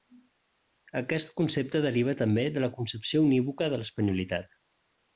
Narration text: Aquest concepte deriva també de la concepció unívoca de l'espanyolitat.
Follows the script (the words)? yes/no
yes